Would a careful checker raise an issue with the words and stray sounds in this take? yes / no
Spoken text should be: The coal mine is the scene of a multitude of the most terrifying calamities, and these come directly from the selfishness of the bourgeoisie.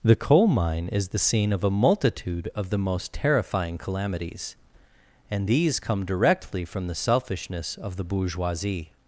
no